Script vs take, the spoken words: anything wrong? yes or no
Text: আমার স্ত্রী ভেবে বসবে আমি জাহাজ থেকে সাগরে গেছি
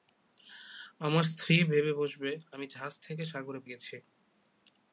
no